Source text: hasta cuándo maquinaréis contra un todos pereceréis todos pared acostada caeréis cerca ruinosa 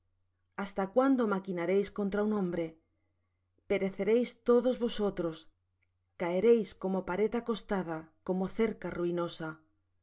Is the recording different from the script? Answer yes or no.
yes